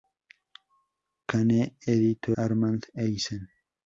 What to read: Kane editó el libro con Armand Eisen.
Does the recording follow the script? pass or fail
fail